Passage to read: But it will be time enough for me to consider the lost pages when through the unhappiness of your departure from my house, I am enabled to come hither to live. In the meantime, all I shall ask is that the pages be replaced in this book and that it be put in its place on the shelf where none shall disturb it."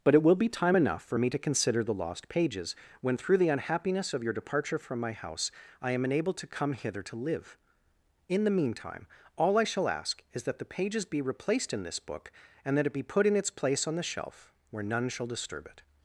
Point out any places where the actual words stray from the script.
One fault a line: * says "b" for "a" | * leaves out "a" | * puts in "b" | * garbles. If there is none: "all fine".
all fine